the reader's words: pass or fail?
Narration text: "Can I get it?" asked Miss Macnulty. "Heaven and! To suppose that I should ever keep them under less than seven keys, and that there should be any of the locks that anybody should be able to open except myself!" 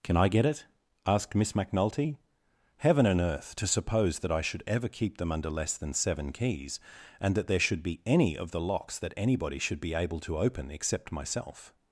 fail